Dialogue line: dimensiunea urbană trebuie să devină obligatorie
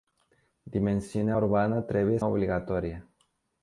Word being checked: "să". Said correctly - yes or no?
no